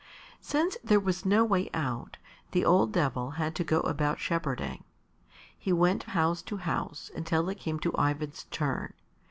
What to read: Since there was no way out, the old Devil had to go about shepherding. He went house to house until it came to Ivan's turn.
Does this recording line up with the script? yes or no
yes